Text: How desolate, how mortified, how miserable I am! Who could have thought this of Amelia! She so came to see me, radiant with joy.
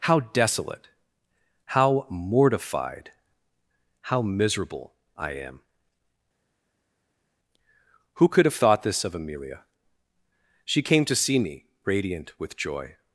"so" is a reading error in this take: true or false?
true